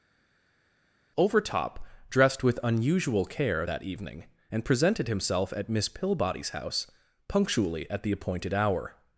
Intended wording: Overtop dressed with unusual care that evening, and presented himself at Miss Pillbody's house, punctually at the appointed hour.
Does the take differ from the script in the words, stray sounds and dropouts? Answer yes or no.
no